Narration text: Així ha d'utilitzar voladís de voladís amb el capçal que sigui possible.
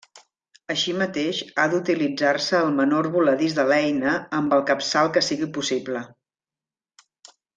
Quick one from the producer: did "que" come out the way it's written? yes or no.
yes